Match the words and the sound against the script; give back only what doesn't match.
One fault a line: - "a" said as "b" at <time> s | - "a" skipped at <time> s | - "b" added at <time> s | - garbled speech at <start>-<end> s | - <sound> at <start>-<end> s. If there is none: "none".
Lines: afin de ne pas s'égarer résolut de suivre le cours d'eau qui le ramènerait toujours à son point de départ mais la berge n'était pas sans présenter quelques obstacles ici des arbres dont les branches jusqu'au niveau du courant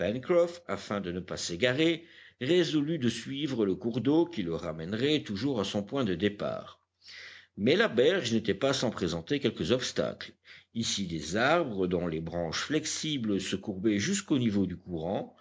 - "flexibles se courbaient" added at 12.6 s